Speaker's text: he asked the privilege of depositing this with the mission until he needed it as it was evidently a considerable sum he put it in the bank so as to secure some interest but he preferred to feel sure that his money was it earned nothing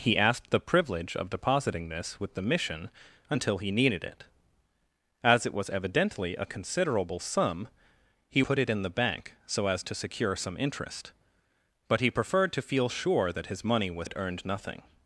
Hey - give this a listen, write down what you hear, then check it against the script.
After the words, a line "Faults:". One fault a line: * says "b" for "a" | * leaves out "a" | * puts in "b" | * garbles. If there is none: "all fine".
he asked the privilege of depositing this with the mission until he needed it as it was evidently a considerable sum he put it in the bank so as to secure some interest but he preferred to feel sure that his money was it earned nothing
Faults:
all fine